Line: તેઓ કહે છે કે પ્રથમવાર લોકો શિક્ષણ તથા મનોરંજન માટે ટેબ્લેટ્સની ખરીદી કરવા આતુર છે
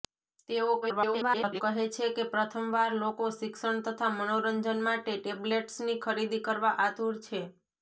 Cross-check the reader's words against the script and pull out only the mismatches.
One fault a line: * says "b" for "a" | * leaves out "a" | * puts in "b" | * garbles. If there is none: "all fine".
* garbles